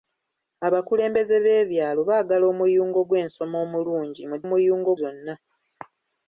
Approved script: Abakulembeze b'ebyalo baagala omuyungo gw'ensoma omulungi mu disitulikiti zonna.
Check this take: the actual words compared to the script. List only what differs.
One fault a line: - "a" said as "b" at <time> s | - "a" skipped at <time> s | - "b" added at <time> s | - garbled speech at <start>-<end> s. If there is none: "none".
- "disitulikiti" said as "omuyungo" at 4.4 s